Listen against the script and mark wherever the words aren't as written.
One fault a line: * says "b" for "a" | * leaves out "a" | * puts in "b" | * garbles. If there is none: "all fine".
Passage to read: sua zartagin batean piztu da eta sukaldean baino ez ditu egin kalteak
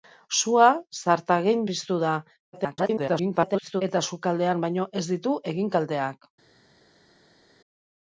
* leaves out "batean"
* garbles